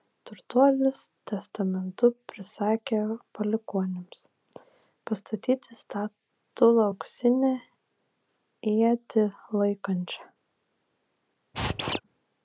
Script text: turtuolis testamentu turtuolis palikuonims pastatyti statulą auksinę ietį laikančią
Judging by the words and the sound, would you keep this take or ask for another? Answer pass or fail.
fail